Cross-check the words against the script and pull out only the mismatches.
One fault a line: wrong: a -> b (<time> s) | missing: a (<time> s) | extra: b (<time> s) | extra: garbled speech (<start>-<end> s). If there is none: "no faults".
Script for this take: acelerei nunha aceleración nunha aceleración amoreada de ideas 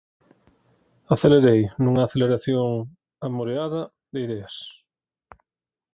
missing: nunha aceleración (2.7 s)